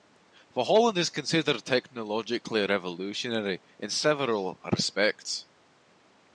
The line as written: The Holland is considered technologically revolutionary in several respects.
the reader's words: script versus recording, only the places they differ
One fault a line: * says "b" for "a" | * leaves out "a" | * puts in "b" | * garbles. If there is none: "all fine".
all fine